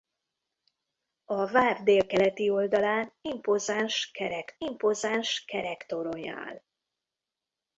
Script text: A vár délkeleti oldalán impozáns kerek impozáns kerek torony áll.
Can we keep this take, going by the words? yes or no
yes